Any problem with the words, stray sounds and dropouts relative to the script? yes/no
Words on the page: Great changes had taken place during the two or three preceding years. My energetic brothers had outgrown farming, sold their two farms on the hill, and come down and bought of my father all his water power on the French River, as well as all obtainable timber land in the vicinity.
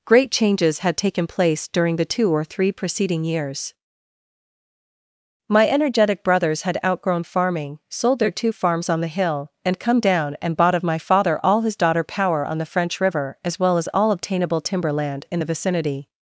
yes